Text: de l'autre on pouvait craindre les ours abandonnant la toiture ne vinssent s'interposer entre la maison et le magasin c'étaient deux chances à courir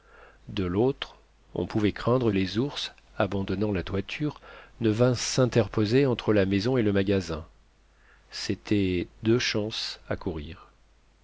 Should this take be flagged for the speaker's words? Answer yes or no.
no